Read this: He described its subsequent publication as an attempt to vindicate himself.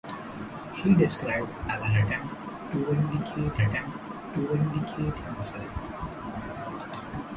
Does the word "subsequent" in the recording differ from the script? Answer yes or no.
yes